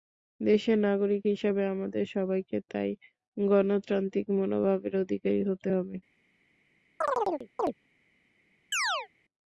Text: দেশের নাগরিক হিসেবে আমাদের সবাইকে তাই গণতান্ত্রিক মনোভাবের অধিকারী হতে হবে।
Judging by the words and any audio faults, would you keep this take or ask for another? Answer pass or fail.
fail